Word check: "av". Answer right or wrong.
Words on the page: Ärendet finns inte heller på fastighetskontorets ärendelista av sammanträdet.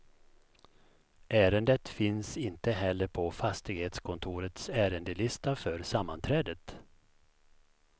wrong